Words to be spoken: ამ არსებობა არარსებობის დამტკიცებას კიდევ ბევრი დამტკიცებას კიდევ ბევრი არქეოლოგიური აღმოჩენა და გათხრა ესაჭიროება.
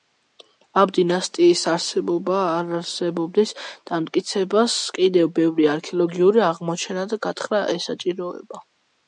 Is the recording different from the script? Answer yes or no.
yes